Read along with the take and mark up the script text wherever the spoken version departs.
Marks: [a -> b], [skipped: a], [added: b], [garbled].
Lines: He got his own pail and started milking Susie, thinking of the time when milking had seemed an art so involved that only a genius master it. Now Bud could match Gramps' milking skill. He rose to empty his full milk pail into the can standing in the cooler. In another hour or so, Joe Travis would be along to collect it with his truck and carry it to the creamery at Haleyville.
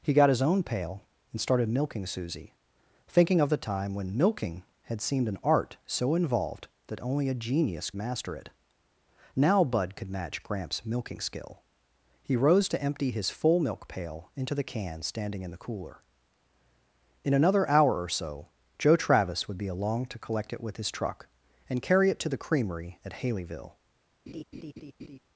He got his own pail and started milking Susie, thinking of the time when milking had seemed an art so involved that only a genius master it. Now Bud could match Gramps' milking skill. He rose to empty his full milk pail into the can standing in the cooler. In another hour or so, Joe Travis would be along to collect it with his truck and carry it to the creamery at Haleyville.